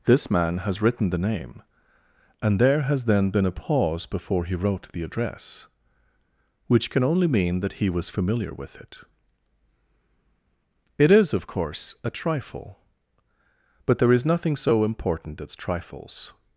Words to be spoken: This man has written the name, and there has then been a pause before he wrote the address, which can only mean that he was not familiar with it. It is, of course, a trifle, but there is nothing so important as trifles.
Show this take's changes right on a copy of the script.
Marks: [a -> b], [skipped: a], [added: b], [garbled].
This man has written the name, and there has then been a pause before he wrote the address, which can only mean that he was [skipped: not] familiar with it. It is, of course, a trifle, but there is nothing so important as trifles.